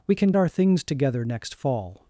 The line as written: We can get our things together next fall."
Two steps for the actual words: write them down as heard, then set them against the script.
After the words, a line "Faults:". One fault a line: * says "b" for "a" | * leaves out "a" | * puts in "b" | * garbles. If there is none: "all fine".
We can our things together next fall."
Faults:
* leaves out "get"